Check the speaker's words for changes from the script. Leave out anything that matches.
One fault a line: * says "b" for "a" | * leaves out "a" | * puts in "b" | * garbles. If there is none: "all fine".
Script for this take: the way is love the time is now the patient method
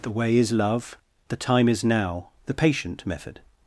all fine